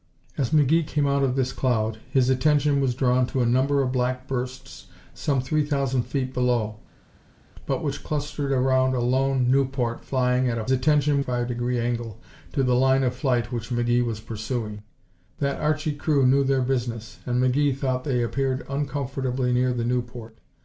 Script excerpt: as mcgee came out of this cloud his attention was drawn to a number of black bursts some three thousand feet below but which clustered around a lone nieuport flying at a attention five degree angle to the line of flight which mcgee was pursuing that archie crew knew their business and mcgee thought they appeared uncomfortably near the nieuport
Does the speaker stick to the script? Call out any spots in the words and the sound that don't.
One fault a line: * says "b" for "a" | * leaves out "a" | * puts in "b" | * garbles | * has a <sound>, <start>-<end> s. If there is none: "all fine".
all fine